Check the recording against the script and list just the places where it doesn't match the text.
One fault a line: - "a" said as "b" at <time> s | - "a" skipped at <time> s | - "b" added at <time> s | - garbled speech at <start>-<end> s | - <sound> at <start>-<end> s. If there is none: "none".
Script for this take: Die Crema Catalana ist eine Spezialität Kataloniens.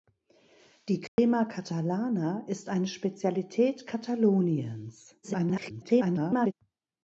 - dropout at 1.1-1.2 s
- garbled speech at 5.2-6.5 s